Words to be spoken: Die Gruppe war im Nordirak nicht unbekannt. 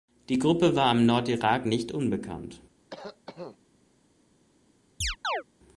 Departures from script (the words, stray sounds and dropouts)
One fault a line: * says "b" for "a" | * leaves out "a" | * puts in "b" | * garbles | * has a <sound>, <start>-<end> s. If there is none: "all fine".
* has a cough, 2.9-3.6 s
* has a chirp, 5.0-5.4 s